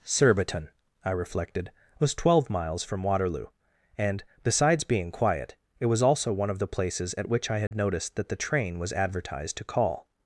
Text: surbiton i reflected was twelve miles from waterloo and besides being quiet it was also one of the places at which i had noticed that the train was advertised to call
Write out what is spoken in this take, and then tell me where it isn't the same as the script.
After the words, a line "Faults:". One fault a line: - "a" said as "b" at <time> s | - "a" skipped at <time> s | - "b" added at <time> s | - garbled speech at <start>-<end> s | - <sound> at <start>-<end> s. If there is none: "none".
surbiton i reflected was twelve miles from waterloo and besides being quiet it was also one of the places at which i had noticed that the train was advertised to call
Faults:
- dropout at 7.7-7.7 s